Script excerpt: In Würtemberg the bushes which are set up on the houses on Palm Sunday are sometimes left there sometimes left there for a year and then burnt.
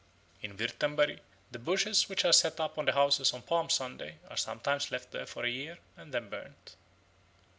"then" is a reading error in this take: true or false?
false